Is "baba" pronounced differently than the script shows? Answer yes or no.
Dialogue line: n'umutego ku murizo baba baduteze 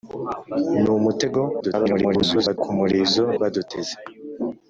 yes